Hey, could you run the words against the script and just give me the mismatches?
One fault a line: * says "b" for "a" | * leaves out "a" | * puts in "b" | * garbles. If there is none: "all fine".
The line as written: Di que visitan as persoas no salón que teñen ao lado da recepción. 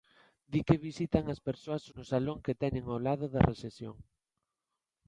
all fine